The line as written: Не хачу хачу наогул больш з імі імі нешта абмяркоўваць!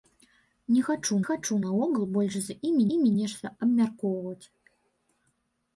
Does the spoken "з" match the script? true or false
true